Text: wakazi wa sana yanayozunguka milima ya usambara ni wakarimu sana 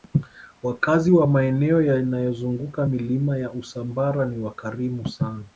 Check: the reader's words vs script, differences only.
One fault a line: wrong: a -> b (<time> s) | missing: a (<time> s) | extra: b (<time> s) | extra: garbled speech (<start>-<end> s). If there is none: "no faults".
wrong: sana -> maeneo (1.3 s)